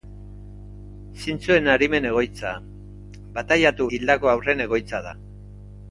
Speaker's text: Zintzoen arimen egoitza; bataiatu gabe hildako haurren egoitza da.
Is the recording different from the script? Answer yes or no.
yes